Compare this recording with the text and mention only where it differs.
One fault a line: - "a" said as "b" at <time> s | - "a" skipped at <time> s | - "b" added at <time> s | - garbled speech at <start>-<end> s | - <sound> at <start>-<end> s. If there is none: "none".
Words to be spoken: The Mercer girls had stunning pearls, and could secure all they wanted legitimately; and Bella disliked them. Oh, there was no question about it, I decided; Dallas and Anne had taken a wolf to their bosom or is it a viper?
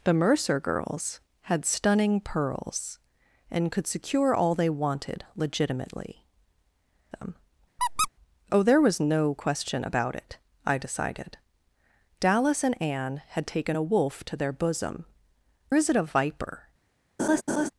- "and Bella disliked" skipped at 6.2 s
- squeak at 7.8-8.1 s
- "or" skipped at 15.1 s
- laugh at 17.2-17.7 s